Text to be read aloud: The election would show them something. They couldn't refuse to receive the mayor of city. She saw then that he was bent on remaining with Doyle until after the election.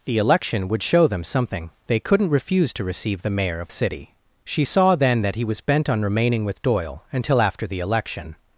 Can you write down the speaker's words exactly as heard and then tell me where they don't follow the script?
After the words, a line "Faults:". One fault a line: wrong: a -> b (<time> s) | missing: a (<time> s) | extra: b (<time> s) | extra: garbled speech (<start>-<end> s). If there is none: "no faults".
The election would show them something. They couldn't refuse to receive the mayor of city. She saw then that he was bent on remaining with Doyle until after the election.
Faults:
no faults